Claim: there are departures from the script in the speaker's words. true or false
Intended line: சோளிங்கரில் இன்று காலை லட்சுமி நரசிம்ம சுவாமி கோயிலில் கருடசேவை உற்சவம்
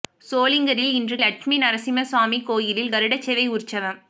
true